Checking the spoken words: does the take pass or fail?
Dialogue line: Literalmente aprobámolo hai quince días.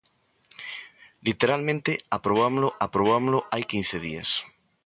fail